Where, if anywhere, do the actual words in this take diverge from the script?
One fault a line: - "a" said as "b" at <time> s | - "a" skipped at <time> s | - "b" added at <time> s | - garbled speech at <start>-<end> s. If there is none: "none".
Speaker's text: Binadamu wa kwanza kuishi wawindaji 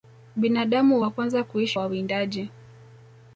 none